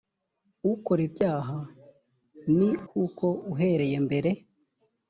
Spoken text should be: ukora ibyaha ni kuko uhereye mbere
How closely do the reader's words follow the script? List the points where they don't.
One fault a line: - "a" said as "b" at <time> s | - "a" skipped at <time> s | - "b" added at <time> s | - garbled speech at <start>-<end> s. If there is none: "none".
none